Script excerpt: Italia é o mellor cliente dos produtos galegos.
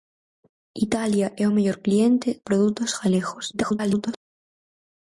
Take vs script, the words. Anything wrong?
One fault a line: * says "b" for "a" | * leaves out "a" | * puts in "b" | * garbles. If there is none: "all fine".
* leaves out "dos"
* garbles